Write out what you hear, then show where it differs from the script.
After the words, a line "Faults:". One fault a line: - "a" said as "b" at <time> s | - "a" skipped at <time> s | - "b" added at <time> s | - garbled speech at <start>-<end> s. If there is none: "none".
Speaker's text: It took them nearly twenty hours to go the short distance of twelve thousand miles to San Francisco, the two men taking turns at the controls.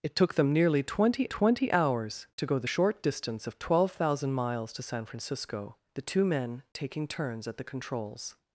It took them nearly twenty twenty hours to go the short distance of twelve thousand miles to San Francisco, the two men taking turns at the controls.
Faults:
- "twenty" added at 1.2 s